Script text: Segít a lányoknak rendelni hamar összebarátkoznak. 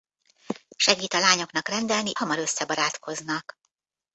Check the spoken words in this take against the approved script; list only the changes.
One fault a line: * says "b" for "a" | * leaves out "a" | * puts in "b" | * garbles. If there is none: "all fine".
all fine